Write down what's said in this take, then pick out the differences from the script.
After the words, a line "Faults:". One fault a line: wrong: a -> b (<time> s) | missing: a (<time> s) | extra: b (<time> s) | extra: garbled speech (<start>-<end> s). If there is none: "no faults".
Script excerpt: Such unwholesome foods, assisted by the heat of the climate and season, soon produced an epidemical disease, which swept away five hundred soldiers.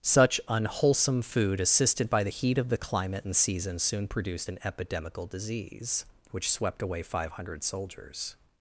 Such unwholesome food, assisted by the heat of the climate and season, soon produced an epidemical disease, which swept away five hundred soldiers.
Faults:
wrong: foods -> food (1.2 s)